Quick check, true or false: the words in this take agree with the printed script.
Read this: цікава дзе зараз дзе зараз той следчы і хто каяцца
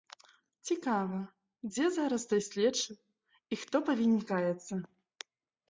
false